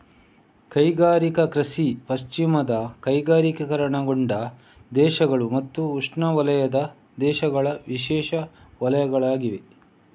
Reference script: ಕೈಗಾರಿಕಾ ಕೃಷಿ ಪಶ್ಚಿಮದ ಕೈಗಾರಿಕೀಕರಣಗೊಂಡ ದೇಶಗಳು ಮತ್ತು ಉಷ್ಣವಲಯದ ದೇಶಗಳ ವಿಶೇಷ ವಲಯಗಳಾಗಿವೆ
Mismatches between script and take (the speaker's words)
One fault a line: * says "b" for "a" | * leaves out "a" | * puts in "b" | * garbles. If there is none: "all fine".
all fine